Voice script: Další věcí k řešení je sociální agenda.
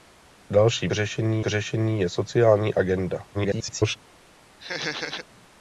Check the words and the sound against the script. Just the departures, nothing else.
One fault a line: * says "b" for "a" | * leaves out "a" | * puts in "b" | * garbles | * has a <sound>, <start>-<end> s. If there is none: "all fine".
* says "řešení" for "věcí"
* garbles
* has a laugh, 4.6-5.3 s